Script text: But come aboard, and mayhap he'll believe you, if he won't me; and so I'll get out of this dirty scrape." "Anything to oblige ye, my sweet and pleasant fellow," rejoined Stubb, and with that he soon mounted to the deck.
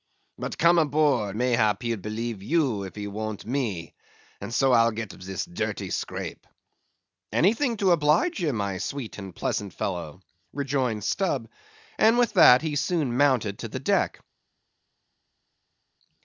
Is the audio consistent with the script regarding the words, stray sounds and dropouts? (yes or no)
no